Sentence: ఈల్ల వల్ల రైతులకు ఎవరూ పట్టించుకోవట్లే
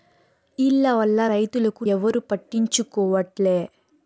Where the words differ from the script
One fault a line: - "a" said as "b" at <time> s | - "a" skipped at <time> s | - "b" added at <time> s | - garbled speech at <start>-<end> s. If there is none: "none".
none